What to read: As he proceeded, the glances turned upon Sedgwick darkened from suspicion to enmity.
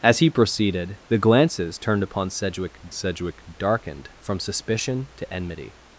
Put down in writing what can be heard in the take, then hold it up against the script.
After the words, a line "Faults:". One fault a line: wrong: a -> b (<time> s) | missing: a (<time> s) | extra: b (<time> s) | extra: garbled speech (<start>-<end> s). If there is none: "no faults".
As he proceeded, the glances turned upon Sedgwick Sedgwick darkened from suspicion to enmity.
Faults:
extra: Sedgwick (2.9 s)